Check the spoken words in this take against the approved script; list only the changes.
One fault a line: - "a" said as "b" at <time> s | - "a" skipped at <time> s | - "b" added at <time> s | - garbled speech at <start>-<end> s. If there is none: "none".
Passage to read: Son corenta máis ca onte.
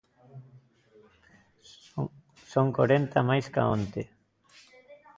none